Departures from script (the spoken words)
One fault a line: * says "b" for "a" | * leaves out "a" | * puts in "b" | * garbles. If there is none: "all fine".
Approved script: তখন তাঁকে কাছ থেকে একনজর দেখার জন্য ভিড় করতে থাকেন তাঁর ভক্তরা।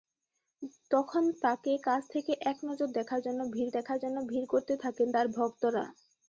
* puts in "দেখার জন্য ভিড়"